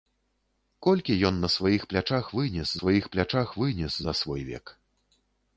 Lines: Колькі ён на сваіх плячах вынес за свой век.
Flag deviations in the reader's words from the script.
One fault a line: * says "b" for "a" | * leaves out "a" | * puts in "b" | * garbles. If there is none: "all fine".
* puts in "сваіх плячах вынес"